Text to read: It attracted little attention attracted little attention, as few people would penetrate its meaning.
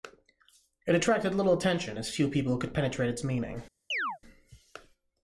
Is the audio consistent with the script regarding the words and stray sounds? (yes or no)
no